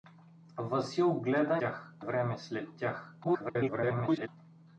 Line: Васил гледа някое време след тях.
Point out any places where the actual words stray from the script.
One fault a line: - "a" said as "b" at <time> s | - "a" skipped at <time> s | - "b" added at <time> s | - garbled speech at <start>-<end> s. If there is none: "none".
- "някое" said as "тях" at 1.5 s
- garbled speech at 3.2-4.3 s